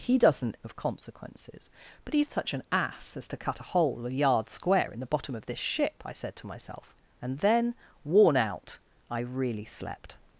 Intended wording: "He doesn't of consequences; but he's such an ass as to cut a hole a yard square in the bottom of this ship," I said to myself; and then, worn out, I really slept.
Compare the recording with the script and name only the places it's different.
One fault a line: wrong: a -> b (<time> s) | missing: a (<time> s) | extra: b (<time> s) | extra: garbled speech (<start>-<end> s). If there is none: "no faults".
no faults